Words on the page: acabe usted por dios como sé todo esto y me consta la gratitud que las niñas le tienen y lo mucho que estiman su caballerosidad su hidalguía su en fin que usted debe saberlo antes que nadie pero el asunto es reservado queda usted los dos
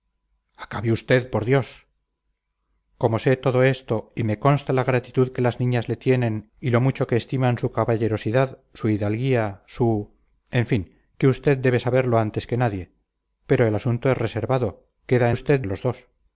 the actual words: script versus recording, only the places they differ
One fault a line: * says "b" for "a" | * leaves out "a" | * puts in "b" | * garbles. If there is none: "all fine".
all fine